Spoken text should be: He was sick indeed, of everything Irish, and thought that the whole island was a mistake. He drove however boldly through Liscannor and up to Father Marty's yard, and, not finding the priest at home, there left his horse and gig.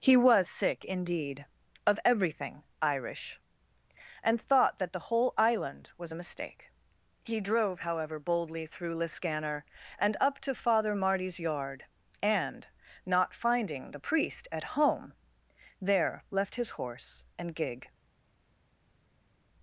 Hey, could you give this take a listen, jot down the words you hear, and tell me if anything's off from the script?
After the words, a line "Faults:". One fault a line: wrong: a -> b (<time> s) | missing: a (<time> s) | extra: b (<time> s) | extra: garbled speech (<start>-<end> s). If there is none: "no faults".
He was sick indeed, of everything Irish, and thought that the whole island was a mistake. He drove however boldly through Liscannor and up to Father Marty's yard, and, not finding the priest at home, there left his horse and gig.
Faults:
no faults